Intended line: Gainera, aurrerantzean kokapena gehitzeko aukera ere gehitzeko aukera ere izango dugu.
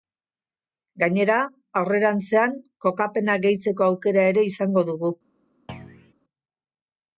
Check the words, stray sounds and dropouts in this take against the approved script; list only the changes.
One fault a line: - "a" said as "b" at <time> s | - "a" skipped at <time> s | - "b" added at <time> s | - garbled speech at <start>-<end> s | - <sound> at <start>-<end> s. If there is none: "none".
- "gehitzeko aukera ere" skipped at 4.5 s
- thud at 5.7-6.1 s